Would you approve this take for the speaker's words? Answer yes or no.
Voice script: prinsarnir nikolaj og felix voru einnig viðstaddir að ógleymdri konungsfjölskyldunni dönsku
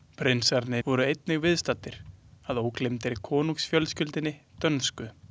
no